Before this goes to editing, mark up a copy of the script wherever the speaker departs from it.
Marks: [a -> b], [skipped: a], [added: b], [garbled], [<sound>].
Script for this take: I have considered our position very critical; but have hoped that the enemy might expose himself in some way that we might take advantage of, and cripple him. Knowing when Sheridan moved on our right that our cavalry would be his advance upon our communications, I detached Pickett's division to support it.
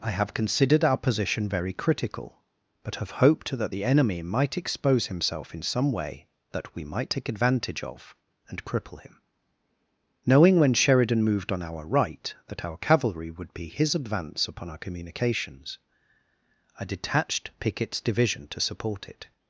I have considered our position very critical; but have hoped that the enemy might expose himself in some way that we might take advantage of, and cripple him. Knowing when Sheridan moved on our right that our cavalry would be his advance upon our communications, I detached Pickett's division to support it.